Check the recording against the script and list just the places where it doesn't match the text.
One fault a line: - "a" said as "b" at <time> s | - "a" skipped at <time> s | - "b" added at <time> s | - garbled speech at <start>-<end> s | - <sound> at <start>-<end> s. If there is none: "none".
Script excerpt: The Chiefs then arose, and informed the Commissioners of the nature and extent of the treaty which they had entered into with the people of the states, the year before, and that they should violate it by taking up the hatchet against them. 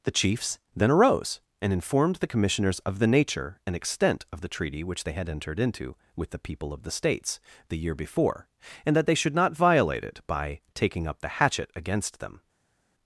- "not" added at 9.3 s